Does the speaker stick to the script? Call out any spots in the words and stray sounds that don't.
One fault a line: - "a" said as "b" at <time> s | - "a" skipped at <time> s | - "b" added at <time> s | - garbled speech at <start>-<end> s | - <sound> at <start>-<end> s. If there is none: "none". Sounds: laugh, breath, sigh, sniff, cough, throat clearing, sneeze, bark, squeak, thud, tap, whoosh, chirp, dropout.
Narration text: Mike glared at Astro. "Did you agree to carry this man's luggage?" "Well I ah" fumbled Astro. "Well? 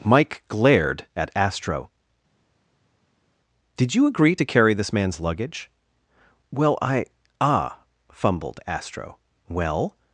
none